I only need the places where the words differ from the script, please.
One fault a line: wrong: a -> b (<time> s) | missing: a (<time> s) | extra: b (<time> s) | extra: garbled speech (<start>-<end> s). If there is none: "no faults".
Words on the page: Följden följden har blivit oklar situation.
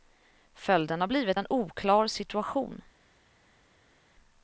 missing: följden (1.0 s)
extra: en (1.4 s)